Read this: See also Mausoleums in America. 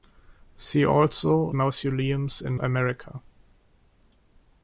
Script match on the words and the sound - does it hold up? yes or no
yes